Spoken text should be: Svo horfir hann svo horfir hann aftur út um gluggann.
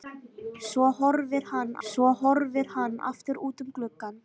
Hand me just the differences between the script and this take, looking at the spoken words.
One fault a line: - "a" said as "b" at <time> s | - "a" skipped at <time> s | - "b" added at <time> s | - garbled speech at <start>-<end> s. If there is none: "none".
none